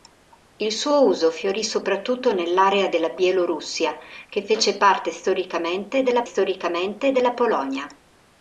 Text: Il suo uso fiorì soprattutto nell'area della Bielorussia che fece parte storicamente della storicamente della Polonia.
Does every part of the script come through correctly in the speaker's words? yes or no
yes